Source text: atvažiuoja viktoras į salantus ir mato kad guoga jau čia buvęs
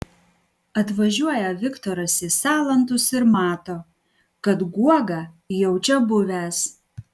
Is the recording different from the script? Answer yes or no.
no